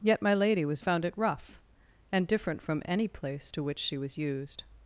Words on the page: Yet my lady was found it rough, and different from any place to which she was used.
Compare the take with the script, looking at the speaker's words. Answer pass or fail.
pass